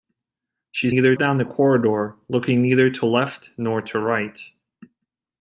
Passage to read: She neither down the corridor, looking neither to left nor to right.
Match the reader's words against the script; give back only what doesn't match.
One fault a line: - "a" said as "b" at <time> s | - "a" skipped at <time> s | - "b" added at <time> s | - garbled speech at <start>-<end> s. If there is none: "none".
none